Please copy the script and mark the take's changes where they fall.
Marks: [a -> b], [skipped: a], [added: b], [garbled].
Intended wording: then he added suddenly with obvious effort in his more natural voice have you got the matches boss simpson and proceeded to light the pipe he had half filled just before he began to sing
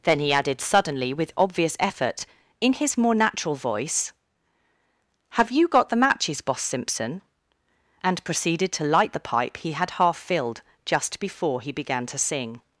then he added suddenly with obvious effort in his more natural voice have you got the matches boss simpson and proceeded to light the pipe he had half filled just before he began to sing